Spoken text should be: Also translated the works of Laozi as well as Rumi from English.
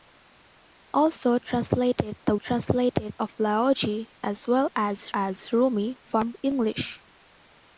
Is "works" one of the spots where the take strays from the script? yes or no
yes